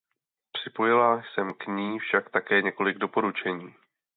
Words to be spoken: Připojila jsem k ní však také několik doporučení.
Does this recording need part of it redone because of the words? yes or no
no